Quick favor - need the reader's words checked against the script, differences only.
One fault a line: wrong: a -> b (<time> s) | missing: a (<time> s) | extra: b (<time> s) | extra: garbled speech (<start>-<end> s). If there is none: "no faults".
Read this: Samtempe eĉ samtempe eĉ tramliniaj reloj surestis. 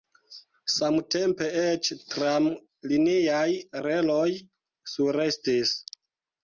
missing: samtempe eĉ (1.9 s)